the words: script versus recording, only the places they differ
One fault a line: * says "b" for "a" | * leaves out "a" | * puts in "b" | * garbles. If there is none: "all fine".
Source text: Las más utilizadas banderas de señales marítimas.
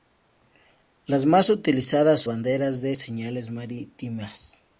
all fine